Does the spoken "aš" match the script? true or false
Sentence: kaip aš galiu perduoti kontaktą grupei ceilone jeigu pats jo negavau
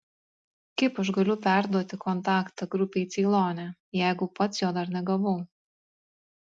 true